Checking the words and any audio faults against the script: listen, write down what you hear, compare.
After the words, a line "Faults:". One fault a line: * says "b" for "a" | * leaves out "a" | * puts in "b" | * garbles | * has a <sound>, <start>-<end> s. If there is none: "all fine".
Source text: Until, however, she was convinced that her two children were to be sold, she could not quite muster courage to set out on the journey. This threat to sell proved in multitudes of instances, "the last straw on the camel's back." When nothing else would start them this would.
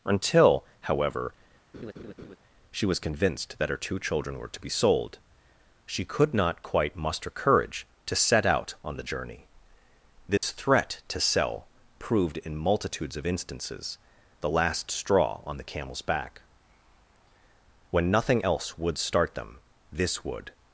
Until, however, she was convinced that her two children were to be sold, she could not quite muster courage to set out on the journey. This threat to sell proved in multitudes of instances, "the last straw on the camel's back." When nothing else would start them this would.
Faults:
* has a laugh, 1.7-2.4 s
* has a dropout, 10.4-10.4 s